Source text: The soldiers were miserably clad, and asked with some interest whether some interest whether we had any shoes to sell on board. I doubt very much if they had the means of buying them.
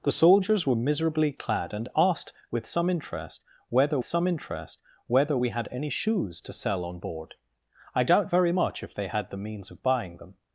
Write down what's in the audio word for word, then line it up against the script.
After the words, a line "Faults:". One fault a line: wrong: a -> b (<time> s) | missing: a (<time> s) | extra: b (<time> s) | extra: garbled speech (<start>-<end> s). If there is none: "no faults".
The soldiers were miserably clad, and asked with some interest whether some interest whether we had any shoes to sell on board. I doubt very much if they had the means of buying them.
Faults:
no faults